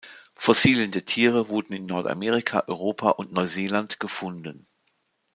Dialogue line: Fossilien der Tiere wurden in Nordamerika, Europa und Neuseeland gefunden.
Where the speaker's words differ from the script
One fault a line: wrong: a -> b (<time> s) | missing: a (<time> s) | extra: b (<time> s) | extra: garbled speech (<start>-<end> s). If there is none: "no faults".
no faults